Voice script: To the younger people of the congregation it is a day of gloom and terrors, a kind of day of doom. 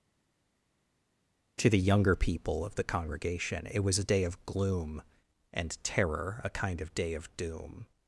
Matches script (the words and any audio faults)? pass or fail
fail